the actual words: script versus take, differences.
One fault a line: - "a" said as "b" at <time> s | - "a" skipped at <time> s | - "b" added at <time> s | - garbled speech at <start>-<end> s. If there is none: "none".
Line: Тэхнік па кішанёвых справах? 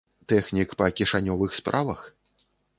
none